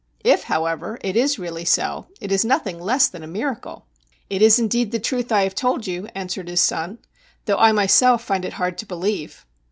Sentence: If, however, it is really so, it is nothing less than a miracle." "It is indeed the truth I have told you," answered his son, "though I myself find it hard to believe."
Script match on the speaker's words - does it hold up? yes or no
yes